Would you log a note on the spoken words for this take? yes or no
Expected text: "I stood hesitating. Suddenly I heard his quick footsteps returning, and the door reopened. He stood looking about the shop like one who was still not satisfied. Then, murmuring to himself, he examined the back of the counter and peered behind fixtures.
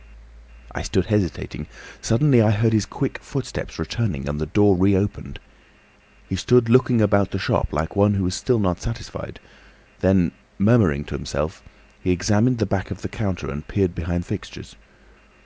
no